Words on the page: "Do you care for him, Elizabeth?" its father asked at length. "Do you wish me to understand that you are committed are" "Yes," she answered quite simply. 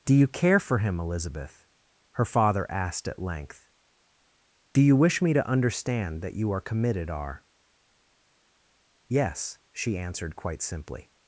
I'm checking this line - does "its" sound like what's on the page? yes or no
no